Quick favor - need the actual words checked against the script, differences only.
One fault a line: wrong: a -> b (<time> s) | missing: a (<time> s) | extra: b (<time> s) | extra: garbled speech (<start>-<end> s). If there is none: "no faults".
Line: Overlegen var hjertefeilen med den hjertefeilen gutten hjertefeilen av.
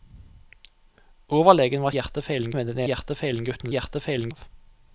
no faults